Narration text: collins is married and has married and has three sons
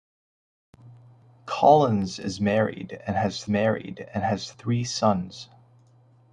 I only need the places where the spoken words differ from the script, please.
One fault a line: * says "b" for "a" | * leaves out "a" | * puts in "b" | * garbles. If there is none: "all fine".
all fine